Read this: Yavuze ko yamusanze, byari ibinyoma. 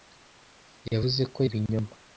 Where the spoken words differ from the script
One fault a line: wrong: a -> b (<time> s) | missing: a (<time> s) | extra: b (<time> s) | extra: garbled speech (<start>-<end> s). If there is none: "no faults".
missing: yamusanze byari (1.4 s)